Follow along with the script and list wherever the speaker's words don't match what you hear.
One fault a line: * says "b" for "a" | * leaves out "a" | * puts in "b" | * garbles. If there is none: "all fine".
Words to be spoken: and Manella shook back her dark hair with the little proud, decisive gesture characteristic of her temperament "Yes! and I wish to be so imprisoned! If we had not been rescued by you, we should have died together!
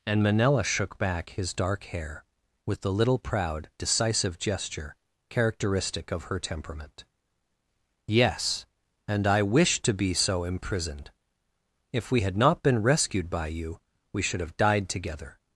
* says "his" for "her"